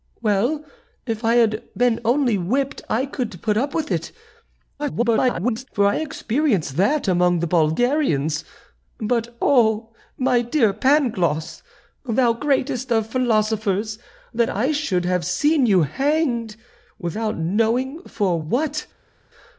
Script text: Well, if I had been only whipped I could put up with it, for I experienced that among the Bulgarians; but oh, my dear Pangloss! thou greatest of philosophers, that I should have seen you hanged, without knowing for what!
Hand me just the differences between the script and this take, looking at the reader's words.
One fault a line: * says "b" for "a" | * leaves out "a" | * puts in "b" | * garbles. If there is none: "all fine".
* garbles